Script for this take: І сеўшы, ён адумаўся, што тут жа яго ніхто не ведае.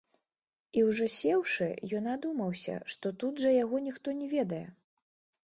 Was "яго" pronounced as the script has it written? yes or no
yes